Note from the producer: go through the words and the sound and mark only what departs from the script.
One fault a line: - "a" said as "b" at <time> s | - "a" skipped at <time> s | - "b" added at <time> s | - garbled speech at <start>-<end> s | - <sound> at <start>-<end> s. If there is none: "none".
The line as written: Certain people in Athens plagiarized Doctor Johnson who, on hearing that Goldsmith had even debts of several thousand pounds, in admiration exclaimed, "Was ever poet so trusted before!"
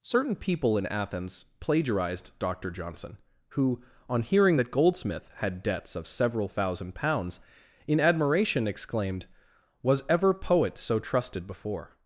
- "even" skipped at 5.6 s